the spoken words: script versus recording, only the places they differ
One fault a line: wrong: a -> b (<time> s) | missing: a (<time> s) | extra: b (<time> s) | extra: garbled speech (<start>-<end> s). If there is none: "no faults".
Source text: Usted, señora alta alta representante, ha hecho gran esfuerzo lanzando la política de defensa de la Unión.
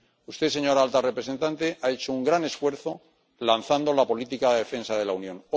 missing: alta (1.0 s)
extra: un (2.1 s)